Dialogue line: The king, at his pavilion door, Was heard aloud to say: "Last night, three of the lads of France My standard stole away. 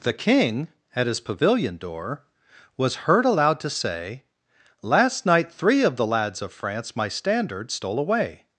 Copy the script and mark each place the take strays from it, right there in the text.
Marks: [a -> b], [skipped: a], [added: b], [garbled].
The king, at his pavilion door, Was heard aloud to say: "Last night, three of the lads of France My standard stole away.